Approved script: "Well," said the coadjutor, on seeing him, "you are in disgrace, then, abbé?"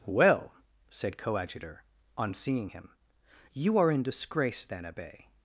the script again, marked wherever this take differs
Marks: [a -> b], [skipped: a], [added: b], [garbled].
"Well," said [skipped: the] coadjutor, on seeing him, "you are in disgrace, then, abbé?"